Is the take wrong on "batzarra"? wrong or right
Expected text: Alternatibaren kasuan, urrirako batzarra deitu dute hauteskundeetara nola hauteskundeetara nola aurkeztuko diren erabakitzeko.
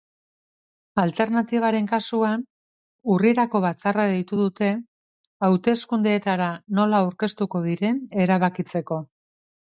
right